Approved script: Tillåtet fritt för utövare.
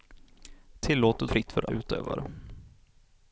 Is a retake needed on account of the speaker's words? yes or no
no